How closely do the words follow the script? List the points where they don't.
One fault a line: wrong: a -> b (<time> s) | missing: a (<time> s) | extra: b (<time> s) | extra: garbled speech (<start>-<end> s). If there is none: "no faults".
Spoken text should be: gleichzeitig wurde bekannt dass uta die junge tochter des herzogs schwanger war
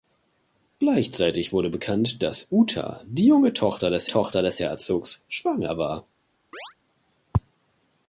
extra: tochter des (4.1 s)